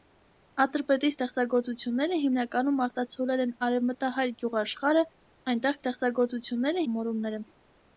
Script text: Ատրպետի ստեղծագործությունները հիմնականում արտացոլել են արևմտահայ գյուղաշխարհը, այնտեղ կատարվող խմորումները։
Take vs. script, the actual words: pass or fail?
fail